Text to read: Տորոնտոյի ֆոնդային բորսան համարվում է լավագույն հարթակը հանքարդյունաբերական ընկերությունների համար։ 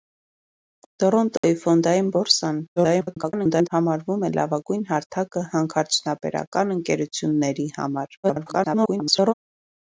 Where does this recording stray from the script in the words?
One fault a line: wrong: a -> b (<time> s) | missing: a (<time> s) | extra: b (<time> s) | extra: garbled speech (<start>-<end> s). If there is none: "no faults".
extra: garbled speech (2.8-3.7 s)
extra: garbled speech (8.2-9.3 s)